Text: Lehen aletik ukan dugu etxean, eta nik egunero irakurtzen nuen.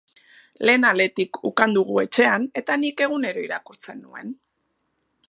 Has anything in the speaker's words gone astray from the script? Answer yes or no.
no